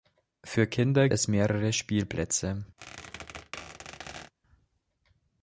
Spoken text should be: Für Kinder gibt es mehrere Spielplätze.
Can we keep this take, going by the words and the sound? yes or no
no